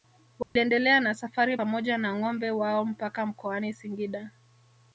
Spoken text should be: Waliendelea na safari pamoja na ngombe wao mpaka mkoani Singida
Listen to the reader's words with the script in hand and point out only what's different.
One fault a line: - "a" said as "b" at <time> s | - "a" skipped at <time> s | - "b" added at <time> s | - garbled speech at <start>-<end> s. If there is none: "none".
none